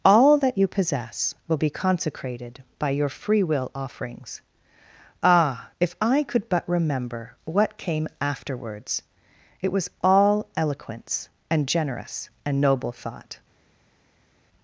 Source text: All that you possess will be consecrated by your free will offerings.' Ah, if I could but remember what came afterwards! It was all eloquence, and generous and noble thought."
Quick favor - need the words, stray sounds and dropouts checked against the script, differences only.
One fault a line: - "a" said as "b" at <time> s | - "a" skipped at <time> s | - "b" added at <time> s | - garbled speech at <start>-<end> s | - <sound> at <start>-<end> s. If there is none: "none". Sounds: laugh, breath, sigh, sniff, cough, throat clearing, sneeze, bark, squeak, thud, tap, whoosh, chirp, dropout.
none